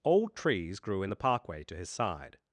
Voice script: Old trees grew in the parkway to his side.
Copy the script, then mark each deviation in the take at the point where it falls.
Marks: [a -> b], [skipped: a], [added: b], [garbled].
Old trees grew in the parkway to his side.